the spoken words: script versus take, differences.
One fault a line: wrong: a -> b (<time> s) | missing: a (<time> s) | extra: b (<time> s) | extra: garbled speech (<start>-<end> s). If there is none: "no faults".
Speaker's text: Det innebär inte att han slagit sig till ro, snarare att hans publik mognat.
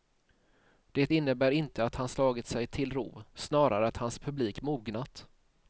no faults